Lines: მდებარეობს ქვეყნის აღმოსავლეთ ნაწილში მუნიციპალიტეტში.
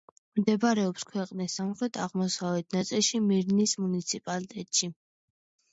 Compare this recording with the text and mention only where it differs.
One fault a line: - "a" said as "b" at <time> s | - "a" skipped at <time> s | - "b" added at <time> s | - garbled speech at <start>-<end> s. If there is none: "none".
- "სამხრეთ" added at 1.6 s
- "მირნის" added at 3.3 s